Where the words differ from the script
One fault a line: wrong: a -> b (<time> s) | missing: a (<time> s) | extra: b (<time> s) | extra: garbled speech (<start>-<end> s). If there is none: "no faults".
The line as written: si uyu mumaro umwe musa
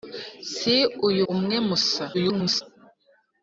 missing: mumaro (1.2 s)
extra: garbled speech (2.1-2.6 s)